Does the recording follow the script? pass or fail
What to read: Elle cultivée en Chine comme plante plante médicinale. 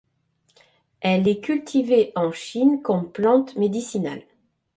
fail